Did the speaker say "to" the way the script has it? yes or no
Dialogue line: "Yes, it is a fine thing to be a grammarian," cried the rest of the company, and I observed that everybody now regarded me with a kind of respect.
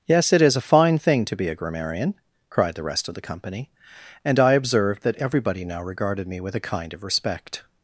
yes